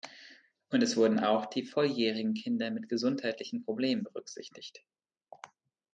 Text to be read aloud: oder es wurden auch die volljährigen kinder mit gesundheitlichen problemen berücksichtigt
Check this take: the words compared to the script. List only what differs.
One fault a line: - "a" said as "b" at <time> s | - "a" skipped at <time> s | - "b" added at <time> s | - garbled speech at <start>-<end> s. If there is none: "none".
- "oder" said as "und" at 0.7 s